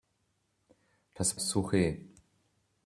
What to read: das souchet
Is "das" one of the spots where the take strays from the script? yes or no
no